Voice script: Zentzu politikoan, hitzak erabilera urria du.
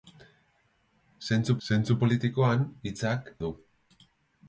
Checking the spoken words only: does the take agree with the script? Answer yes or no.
no